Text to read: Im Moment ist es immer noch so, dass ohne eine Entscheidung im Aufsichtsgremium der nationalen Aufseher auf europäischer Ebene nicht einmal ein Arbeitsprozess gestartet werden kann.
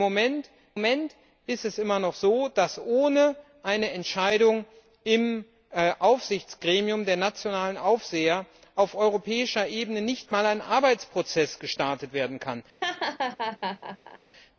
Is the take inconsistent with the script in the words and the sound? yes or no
yes